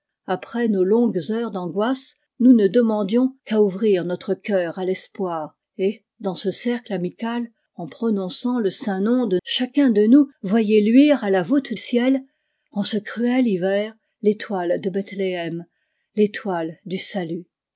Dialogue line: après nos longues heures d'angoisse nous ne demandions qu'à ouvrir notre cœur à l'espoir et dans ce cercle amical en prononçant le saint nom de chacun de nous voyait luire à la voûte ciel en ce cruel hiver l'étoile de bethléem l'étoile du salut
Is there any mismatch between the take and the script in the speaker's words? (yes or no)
no